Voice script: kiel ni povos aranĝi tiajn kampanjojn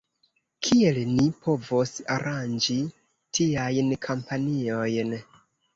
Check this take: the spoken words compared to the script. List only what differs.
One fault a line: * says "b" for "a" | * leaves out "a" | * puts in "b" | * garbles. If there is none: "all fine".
all fine